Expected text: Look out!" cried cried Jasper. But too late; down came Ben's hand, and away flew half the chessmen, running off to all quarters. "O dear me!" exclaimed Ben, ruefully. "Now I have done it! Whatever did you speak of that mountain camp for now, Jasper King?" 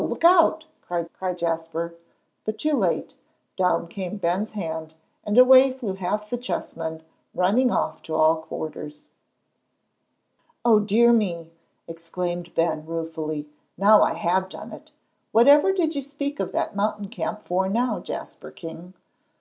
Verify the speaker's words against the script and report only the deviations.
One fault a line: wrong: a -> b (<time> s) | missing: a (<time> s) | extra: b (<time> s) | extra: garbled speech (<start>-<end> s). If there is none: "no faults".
no faults